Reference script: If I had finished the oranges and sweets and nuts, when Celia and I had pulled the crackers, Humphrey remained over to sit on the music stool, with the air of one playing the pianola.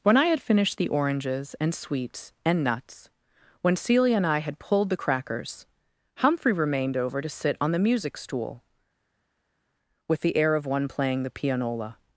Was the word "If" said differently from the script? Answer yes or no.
yes